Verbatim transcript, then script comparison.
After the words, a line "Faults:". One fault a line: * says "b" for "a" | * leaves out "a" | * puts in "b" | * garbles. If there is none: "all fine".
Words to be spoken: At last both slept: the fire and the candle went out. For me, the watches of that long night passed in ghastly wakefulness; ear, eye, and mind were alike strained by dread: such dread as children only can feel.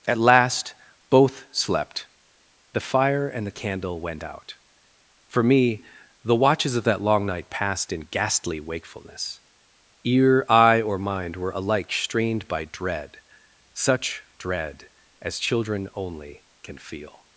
At last both slept: the fire and the candle went out. For me, the watches of that long night passed in ghastly wakefulness; ear, eye, or mind were alike strained by dread: such dread as children only can feel.
Faults:
* says "or" for "and"